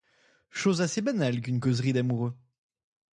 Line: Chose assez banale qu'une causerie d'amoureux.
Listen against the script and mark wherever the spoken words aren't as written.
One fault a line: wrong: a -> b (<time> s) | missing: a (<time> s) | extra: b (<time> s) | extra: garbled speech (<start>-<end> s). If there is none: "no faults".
no faults